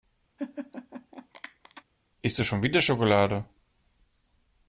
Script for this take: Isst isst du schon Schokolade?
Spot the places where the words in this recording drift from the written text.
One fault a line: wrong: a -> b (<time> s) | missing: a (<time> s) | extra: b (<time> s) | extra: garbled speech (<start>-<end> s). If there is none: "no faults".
missing: isst (2.4 s)
extra: wieder (2.6 s)